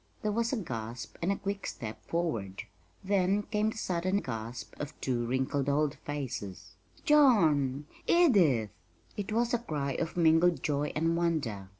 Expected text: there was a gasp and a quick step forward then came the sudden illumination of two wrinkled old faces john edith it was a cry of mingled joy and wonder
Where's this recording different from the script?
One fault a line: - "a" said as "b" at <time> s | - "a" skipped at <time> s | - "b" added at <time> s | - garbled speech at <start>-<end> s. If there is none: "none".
- "illumination" said as "gasp" at 4.1 s